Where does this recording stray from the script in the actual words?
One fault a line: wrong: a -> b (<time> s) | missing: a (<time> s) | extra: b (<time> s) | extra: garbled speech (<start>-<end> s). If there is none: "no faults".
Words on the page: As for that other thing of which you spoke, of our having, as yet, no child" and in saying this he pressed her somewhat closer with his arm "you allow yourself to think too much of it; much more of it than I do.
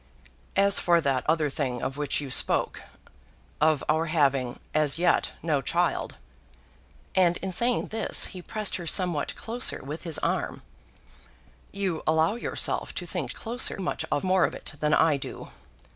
wrong: too -> closer (13.3 s)
missing: it much (14.2 s)